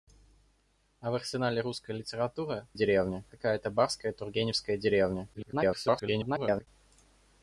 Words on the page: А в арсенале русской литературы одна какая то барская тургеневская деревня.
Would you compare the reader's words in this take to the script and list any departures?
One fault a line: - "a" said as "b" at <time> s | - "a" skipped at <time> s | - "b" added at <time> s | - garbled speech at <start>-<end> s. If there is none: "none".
- "одна" said as "деревня" at 2.7 s
- garbled speech at 5.3-6.7 s